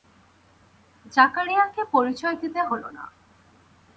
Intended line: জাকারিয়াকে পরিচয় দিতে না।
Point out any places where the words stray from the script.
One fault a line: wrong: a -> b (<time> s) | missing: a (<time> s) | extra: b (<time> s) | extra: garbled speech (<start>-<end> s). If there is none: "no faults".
extra: হল (2.6 s)